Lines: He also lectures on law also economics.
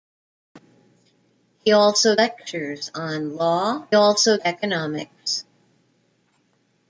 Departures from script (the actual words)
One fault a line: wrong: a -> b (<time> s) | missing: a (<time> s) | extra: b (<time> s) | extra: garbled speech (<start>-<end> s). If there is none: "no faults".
no faults